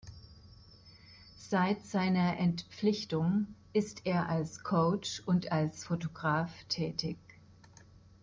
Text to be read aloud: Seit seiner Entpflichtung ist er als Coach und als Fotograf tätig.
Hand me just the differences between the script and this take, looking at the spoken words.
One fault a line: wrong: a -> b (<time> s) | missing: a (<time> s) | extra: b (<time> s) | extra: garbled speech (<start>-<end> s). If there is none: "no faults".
no faults